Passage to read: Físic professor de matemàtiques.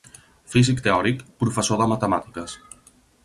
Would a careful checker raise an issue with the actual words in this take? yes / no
yes